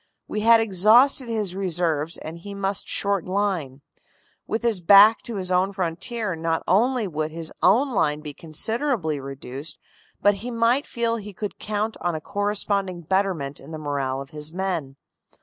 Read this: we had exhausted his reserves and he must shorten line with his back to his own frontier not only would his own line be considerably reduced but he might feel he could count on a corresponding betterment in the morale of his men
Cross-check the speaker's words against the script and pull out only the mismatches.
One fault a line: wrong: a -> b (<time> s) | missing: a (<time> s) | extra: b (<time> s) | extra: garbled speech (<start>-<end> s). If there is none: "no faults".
no faults